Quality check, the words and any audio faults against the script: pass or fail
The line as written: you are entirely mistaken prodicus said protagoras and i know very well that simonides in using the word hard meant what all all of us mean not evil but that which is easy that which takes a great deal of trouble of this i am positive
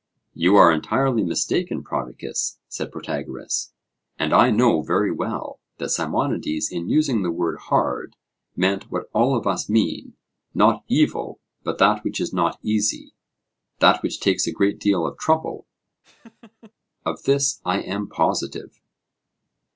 fail